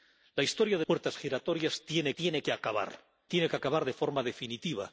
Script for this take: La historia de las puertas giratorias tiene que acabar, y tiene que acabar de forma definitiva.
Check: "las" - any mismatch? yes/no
yes